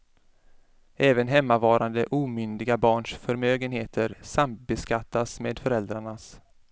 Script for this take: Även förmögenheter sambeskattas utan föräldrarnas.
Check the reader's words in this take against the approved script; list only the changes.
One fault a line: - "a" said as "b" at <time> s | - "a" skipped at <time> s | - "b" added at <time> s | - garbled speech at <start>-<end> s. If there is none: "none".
- "hemmavarande omyndiga barns" added at 1.3 s
- "utan" said as "med" at 5.4 s